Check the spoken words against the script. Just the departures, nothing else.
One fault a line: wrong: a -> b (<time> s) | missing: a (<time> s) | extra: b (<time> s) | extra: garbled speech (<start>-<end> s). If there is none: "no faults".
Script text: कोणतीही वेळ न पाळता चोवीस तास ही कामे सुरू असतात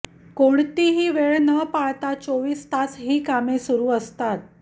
no faults